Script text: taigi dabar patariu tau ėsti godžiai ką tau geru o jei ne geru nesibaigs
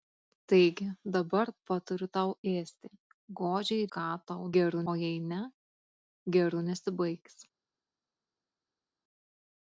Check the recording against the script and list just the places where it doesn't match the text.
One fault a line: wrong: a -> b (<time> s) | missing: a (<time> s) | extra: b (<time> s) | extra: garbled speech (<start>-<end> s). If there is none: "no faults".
no faults